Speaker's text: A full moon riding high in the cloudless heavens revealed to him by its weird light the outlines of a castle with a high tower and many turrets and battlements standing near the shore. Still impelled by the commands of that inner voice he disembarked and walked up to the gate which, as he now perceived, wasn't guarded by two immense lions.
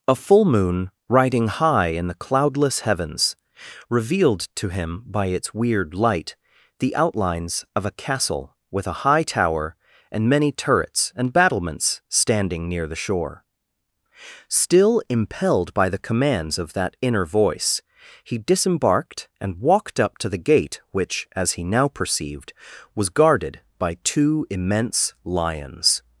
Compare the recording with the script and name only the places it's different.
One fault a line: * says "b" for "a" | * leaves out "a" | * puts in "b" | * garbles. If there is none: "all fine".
* says "was" for "wasn't"